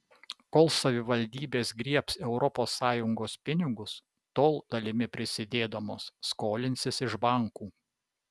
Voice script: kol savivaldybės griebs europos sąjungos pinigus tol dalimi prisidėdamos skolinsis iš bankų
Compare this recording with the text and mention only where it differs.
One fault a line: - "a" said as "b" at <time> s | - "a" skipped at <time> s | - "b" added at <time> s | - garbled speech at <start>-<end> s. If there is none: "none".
none